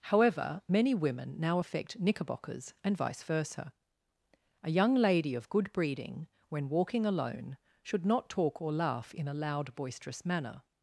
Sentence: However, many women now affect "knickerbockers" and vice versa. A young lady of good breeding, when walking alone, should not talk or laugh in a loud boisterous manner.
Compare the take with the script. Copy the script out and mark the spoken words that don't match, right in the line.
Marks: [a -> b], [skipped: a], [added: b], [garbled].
However, many women now affect "knickerbockers" and vice versa. A young lady of good breeding, when walking alone, should not talk or laugh in a loud boisterous manner.